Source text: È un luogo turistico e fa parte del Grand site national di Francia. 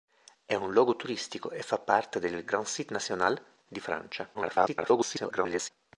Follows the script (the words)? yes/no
no